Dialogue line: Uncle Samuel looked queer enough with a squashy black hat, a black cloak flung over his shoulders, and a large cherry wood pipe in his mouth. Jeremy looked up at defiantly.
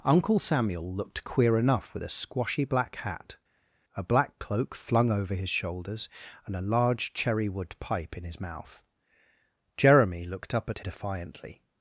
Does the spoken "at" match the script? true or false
true